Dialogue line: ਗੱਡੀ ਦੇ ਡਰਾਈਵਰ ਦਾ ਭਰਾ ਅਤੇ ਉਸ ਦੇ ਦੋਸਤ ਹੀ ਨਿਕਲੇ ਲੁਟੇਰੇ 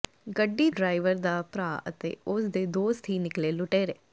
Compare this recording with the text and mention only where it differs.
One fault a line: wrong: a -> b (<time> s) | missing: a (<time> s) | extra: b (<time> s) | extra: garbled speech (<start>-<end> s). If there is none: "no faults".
missing: ਦੇ (0.7 s)